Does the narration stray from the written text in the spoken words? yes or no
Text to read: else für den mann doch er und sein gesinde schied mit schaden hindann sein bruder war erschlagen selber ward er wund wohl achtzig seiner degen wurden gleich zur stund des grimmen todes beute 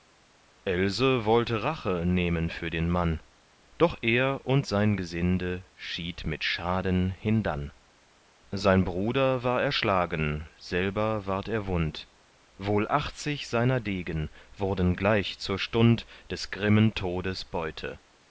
yes